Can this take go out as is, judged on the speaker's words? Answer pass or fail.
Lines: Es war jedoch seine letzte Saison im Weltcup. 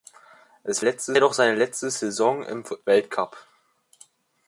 fail